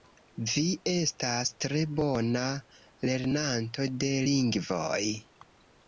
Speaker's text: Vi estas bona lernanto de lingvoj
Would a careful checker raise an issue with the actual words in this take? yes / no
yes